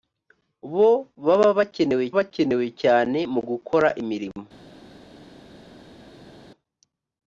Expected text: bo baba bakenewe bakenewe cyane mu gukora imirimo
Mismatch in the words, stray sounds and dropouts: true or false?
false